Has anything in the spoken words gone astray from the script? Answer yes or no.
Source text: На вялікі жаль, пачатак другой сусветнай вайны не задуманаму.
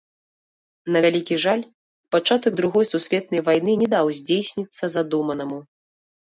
yes